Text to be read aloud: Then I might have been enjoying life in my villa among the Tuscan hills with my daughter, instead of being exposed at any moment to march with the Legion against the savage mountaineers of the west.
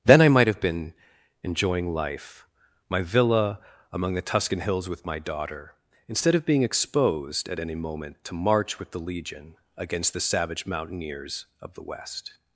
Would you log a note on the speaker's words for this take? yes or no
yes